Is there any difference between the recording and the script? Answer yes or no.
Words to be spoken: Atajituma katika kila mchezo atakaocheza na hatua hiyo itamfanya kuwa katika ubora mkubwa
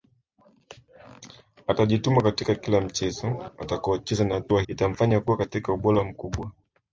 yes